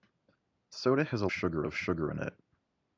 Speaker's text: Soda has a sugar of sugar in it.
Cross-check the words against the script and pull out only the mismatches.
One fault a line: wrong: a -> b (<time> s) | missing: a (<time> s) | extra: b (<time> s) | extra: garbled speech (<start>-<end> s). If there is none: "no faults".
no faults